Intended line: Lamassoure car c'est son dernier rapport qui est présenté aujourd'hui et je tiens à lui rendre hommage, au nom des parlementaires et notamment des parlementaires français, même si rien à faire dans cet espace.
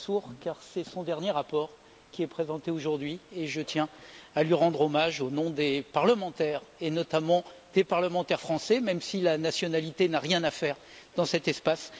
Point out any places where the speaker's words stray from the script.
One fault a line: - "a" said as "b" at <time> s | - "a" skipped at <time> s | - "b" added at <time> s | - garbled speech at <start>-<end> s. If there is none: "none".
- "la nationalité n'a" added at 9.2 s